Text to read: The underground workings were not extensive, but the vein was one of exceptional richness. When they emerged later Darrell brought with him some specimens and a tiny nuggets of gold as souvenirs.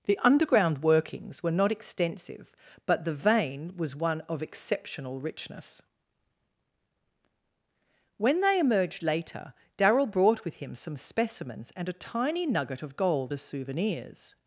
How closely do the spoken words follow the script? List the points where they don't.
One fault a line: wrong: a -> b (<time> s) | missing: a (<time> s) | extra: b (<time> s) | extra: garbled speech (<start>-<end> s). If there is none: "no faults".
wrong: nuggets -> nugget (12.5 s)